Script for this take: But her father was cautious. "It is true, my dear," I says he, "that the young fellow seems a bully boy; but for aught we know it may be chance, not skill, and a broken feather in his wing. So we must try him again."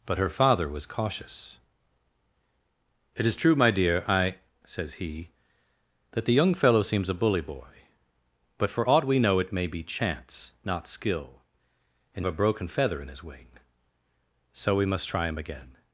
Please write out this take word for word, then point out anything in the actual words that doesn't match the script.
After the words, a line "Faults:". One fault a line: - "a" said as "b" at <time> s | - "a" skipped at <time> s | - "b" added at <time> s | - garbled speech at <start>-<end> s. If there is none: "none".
But her father was cautious. "It is true, my dear," I says he, "that the young fellow seems a bully boy; but for aught we know it may be chance, not skill, and a broken feather in his wing. So we must try him again."
Faults:
none